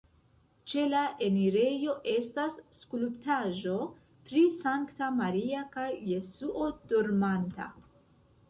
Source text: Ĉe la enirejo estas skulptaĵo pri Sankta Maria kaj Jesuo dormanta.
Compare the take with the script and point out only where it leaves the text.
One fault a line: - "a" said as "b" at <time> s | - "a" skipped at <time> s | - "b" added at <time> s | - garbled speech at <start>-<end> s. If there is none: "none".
none